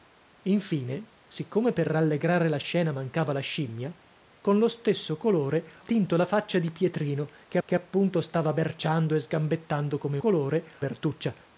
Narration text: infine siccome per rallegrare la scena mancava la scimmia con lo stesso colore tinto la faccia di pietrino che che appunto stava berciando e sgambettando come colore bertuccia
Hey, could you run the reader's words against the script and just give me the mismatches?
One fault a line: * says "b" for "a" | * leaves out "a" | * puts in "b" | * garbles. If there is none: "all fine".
all fine